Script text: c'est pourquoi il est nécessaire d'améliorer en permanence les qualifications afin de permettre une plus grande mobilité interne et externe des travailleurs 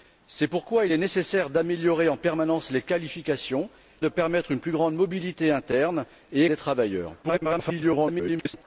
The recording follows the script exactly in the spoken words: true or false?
false